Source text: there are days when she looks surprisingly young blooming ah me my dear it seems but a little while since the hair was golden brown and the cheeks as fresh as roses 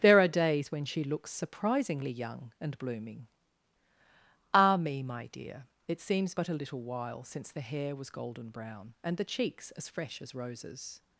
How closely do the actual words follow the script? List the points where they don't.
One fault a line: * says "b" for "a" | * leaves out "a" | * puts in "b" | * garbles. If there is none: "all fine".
* puts in "and"